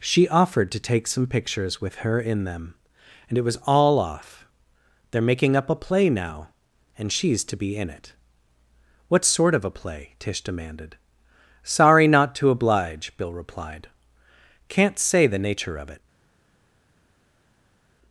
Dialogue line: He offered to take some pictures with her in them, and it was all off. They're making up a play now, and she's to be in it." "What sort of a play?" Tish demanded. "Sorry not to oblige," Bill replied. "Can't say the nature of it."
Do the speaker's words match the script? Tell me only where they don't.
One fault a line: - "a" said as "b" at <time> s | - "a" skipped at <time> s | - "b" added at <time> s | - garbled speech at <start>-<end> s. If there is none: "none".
- "He" said as "She" at 0.0 s